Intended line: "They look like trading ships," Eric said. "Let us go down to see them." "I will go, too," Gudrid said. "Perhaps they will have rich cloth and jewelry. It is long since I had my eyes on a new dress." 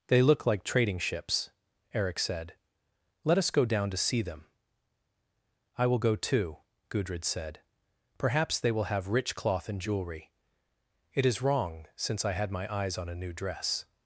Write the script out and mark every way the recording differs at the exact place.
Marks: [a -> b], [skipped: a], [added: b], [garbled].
"They look like trading ships," Eric said. "Let us go down to see them." "I will go, too," Gudrid said. "Perhaps they will have rich cloth and jewelry. It is [long -> wrong] since I had my eyes on a new dress."